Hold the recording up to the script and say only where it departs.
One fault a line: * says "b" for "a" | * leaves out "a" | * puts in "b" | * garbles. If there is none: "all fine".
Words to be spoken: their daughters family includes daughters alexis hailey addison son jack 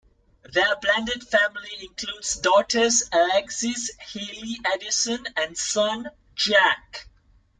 * says "blended" for "daughters"
* puts in "and"